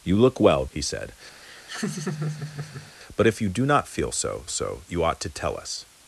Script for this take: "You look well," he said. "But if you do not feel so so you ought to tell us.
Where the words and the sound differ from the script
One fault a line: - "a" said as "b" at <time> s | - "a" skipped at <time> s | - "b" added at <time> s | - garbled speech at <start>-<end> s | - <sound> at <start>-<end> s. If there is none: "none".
- laugh at 1.4-2.9 s